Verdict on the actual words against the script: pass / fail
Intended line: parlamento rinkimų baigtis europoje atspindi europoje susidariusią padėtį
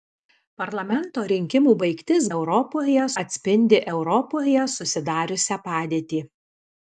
pass